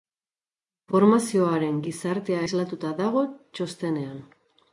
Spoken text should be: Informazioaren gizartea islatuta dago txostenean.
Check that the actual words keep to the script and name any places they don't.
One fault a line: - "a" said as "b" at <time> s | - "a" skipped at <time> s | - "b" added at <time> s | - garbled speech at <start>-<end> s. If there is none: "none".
none